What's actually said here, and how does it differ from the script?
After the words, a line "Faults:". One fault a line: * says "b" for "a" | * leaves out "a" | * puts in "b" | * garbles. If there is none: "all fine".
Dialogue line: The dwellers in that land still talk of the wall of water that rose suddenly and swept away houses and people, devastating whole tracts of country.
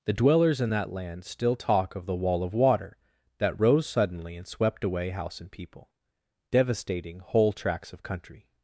The dwellers in that land still talk of the wall of water that rose suddenly and swept away house and people, devastating whole tracts of country.
Faults:
* says "house" for "houses"